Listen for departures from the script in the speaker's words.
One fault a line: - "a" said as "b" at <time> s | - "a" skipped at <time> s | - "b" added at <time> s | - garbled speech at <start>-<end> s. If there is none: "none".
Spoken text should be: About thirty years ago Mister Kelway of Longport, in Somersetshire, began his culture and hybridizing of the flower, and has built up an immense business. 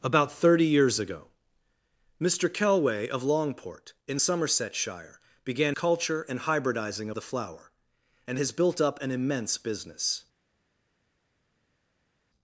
- "his" skipped at 5.8 s
- "of" skipped at 7.1 s